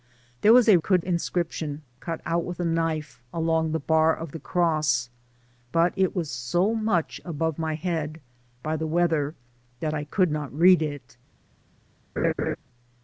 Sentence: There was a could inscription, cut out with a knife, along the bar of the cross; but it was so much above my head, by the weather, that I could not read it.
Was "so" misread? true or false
false